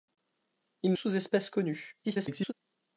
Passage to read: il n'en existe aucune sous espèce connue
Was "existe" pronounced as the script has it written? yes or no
no